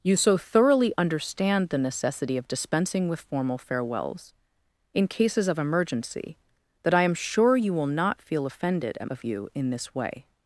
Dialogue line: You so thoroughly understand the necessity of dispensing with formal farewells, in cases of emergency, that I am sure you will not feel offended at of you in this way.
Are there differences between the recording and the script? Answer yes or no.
no